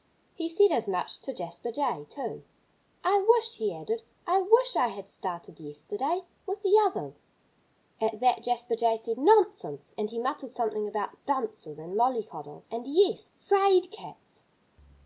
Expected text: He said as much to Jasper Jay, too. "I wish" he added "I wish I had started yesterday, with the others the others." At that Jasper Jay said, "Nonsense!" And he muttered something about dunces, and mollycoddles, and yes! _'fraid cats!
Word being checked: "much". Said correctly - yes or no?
yes